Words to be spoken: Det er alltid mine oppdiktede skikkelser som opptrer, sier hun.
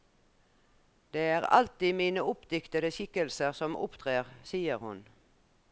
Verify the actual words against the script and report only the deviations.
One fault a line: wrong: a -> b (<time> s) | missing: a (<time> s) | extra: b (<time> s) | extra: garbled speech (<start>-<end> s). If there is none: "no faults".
no faults